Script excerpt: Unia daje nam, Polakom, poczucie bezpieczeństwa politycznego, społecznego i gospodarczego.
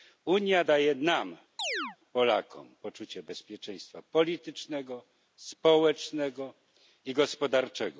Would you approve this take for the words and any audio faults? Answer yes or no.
no